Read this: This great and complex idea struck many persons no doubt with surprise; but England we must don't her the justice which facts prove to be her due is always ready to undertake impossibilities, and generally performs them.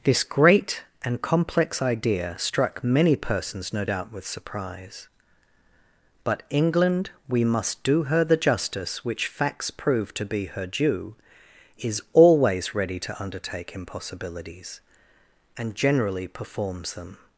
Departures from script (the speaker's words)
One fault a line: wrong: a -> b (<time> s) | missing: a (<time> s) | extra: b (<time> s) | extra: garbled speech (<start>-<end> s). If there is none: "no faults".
wrong: don't -> do (7.8 s)